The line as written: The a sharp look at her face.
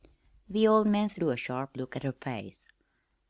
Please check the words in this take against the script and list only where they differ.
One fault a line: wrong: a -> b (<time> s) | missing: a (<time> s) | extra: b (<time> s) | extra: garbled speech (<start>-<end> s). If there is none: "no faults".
extra: old man threw (0.7 s)